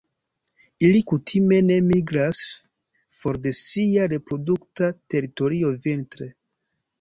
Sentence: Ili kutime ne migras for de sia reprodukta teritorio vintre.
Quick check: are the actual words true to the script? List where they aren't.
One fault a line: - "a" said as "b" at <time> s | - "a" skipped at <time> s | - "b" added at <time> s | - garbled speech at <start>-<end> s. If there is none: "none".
none